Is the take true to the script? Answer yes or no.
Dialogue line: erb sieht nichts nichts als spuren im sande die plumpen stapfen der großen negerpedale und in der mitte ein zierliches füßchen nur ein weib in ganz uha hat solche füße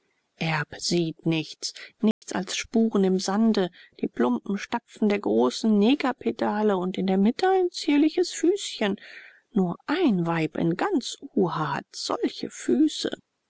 yes